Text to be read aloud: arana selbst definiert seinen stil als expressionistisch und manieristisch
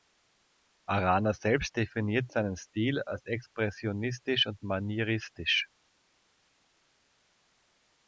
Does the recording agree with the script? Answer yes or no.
yes